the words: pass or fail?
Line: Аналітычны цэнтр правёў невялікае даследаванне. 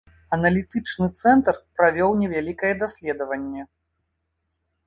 pass